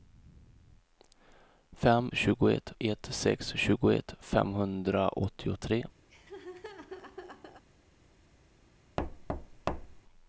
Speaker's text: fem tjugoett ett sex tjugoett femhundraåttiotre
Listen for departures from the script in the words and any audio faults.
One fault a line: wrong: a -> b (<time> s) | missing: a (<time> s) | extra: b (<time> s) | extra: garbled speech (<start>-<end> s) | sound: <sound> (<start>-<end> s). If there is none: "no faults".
sound: laugh (6.1-7.6 s)
sound: thud (9.0-10.0 s)